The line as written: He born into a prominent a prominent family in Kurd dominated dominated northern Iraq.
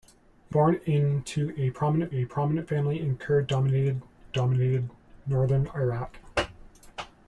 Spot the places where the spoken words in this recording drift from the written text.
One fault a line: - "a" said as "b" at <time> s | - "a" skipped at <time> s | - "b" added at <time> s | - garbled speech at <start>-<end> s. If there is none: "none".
none